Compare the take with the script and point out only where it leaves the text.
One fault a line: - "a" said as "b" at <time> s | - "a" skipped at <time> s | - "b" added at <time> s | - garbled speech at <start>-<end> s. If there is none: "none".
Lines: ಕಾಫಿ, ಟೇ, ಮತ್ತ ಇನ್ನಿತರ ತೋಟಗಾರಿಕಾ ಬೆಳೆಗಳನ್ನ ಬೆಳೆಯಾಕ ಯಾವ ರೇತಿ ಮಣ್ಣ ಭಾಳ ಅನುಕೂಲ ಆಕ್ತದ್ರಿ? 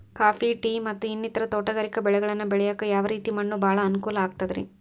none